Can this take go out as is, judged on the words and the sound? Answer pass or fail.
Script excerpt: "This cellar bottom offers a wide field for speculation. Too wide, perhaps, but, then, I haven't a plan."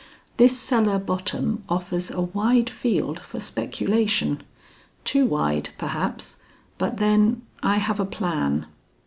fail